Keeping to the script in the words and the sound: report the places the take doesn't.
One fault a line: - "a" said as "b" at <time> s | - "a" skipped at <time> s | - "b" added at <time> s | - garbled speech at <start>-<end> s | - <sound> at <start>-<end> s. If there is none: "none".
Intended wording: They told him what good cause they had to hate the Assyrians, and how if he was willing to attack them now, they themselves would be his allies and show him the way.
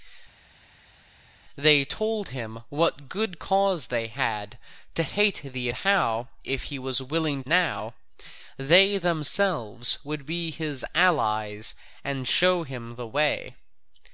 - "Assyrians and" skipped at 5.7 s
- "to attack them" skipped at 7.4 s